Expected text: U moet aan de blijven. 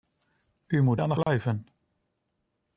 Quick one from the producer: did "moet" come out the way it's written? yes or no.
yes